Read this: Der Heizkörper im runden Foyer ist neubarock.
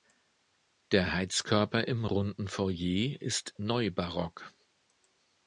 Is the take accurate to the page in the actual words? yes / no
yes